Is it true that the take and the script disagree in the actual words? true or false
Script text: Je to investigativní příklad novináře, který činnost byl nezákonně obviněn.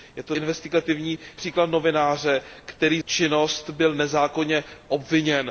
false